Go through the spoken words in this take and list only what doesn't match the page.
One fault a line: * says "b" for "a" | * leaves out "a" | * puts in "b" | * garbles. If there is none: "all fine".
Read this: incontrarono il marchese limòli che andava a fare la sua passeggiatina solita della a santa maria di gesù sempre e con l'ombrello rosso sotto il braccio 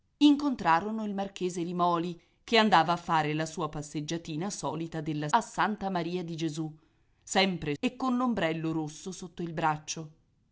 all fine